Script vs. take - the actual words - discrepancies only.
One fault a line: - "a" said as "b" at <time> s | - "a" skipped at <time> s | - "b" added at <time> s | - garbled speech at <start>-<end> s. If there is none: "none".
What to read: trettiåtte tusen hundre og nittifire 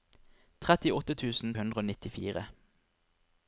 none